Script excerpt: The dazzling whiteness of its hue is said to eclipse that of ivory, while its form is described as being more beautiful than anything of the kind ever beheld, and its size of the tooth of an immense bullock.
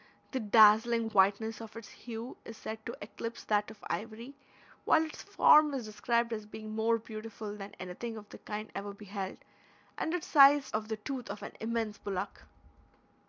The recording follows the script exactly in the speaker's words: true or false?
true